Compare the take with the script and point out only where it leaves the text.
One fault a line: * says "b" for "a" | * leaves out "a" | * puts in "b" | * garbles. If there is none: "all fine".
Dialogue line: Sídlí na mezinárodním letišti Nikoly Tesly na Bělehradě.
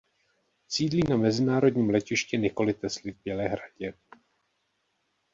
* says "v" for "na"